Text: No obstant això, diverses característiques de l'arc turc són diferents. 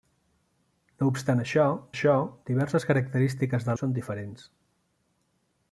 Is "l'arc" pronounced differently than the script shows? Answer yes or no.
yes